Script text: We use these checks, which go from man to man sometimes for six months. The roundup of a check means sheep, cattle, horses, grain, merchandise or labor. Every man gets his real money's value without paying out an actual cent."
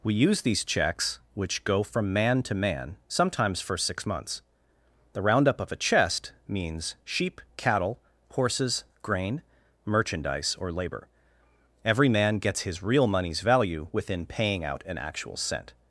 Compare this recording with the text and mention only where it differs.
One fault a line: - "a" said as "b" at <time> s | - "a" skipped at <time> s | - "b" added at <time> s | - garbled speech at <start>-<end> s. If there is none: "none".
- "check" said as "chest" at 5.8 s
- "without" said as "within" at 13.9 s